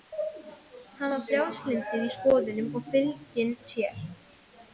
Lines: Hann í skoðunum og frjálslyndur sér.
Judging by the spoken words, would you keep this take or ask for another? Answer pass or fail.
fail